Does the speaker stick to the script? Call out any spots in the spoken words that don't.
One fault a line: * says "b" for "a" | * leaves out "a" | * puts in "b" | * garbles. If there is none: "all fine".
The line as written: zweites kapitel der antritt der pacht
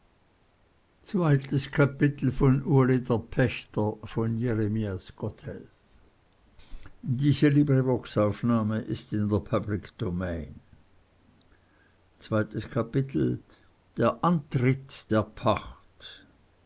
all fine